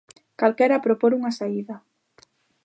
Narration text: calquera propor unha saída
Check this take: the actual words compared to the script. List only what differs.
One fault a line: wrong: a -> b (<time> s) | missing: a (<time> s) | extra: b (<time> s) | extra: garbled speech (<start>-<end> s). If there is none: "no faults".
no faults